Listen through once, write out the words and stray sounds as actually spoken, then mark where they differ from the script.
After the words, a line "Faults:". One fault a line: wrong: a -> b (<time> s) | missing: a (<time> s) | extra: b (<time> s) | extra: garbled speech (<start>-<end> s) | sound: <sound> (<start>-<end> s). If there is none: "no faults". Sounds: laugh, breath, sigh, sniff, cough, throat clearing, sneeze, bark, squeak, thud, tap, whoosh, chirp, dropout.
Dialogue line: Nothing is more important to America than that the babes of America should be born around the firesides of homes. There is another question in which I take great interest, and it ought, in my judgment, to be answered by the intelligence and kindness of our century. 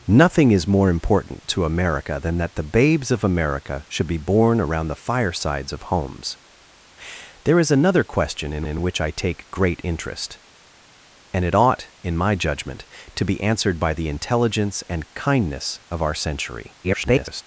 Nothing is more important to America than that the babes of America should be born around the firesides of homes. There is another question in in which I take great interest, and it ought, in my judgment, to be answered by the intelligence and kindness of our century. [garbled]
Faults:
extra: in (8.6 s)
extra: garbled speech (16.8-17.4 s)